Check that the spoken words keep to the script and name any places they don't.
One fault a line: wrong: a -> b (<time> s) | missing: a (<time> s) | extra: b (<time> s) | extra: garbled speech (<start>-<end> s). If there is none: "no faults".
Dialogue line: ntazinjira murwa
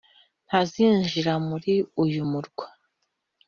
extra: muri uyu (1.5 s)